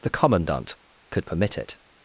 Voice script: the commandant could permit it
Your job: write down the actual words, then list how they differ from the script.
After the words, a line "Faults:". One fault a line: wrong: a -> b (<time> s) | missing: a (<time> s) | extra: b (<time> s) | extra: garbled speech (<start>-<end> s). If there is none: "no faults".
the commandant could permit it
Faults:
no faults